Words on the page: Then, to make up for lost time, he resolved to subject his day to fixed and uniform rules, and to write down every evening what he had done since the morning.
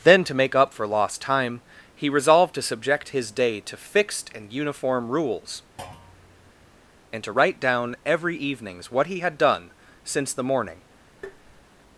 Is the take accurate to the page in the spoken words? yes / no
no